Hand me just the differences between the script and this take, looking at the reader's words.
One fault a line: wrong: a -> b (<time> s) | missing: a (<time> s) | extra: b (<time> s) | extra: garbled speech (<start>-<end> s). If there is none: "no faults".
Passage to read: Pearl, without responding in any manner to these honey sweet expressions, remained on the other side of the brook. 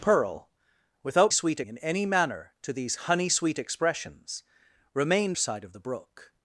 wrong: responding -> sweet (1.3 s)
missing: on the other (5.4 s)